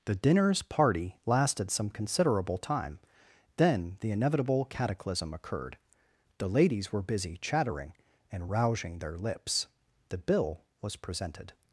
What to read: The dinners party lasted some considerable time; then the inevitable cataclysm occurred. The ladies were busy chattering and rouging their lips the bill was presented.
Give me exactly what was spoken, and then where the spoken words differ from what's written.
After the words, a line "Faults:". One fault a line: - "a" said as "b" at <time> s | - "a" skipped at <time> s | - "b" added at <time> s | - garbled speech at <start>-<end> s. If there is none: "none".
The dinners party lasted some considerable time; then the inevitable cataclysm occurred. The ladies were busy chattering and rouging their lips the bill was presented.
Faults:
none